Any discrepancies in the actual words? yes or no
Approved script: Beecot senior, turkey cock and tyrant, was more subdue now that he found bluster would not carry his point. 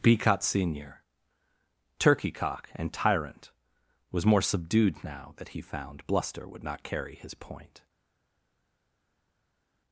yes